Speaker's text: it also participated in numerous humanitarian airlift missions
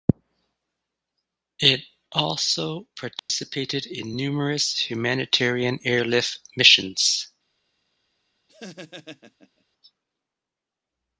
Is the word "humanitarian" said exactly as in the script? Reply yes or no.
yes